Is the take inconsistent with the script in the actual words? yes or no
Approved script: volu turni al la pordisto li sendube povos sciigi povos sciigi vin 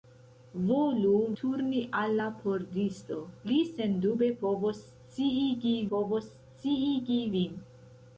no